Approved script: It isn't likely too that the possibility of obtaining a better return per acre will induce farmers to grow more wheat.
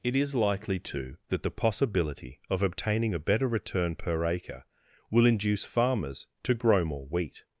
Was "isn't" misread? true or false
true